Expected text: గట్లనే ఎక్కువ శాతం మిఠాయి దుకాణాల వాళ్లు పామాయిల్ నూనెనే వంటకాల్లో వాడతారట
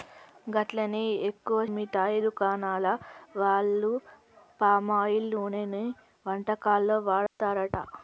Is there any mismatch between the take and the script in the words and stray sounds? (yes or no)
yes